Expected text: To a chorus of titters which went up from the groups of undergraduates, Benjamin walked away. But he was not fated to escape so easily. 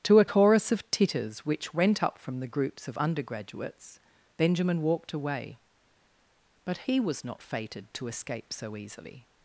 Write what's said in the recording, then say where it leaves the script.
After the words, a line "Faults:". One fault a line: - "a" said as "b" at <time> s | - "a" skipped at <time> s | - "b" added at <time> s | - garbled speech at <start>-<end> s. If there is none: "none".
To a chorus of titters which went up from the groups of undergraduates, Benjamin walked away. But he was not fated to escape so easily.
Faults:
none